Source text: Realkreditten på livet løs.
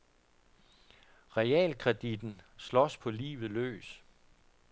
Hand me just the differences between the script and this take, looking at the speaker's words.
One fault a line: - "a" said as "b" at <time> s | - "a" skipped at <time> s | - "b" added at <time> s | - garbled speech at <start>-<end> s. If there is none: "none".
- "slås" added at 2.6 s